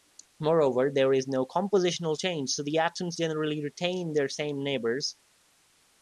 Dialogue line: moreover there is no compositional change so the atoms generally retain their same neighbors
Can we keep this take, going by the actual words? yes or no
yes